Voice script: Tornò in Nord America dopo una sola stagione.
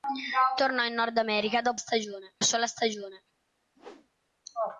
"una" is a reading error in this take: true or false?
true